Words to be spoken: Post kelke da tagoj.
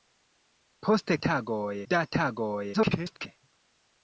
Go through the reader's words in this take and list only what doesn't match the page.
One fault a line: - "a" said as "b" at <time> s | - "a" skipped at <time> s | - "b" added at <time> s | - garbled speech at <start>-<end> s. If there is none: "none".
- "kelke" said as "tagoj" at 1.3 s
- garbled speech at 2.7-3.3 s